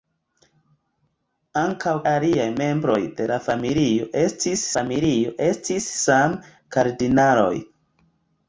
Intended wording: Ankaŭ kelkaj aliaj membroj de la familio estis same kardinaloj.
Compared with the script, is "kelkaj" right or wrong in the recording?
wrong